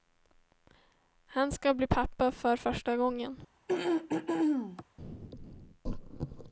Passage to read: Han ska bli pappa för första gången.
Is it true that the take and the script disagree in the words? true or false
false